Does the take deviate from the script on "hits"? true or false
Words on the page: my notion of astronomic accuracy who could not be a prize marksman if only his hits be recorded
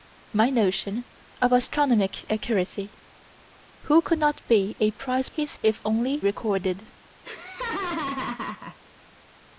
true